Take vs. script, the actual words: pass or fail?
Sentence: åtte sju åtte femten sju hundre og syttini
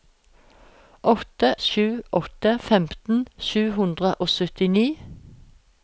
pass